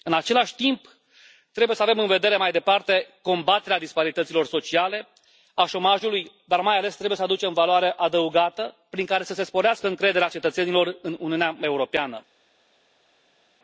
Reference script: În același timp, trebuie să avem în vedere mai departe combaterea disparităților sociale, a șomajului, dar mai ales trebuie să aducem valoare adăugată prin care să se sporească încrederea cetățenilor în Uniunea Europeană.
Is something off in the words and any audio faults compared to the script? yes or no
no